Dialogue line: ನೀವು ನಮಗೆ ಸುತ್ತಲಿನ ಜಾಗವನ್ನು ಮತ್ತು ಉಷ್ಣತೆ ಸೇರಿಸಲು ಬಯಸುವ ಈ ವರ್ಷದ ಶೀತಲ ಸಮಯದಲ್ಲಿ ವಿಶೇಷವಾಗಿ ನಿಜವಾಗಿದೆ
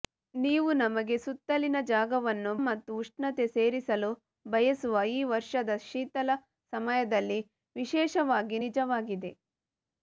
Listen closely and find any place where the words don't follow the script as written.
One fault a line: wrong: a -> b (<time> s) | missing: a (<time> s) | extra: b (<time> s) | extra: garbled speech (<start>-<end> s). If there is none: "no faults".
no faults